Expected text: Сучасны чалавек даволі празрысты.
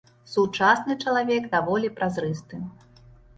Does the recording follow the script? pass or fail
pass